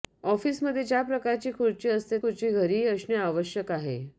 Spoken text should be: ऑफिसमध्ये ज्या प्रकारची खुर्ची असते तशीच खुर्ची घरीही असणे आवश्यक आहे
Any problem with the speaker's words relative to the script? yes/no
yes